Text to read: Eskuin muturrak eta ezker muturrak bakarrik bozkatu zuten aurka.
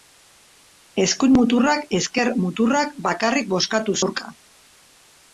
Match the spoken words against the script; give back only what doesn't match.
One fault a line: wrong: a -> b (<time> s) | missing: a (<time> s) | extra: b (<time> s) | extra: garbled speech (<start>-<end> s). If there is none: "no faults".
missing: eta (1.8 s)
missing: zuten (4.0 s)